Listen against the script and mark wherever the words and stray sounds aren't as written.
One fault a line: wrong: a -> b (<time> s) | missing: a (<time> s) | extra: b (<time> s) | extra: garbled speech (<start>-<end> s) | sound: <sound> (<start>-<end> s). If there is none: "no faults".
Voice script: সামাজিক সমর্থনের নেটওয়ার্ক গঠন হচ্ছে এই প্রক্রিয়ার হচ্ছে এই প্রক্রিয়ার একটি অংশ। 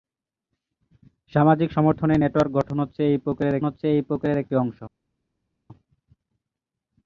no faults